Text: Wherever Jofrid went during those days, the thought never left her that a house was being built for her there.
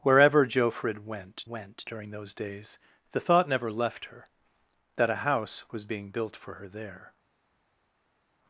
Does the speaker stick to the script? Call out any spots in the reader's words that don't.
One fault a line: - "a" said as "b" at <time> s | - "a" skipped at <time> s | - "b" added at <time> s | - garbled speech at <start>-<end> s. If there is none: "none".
- "went" added at 1.5 s